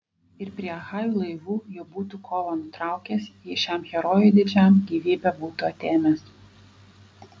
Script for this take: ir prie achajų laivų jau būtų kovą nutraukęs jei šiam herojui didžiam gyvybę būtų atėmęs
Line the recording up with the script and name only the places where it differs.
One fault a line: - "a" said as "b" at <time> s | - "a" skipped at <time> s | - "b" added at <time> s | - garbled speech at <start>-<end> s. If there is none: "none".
none